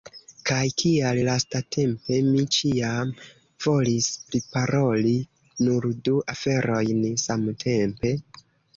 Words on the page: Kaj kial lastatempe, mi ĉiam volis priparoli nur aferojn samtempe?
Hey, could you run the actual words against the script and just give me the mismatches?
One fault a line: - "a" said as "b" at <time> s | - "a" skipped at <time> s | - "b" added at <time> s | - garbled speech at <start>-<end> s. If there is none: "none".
- "du" added at 6.1 s